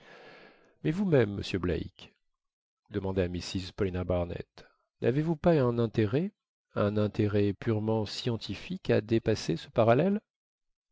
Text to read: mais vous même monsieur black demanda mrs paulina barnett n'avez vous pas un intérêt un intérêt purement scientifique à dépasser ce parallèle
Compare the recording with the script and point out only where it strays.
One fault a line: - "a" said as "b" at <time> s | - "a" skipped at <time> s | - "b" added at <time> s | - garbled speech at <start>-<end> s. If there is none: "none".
none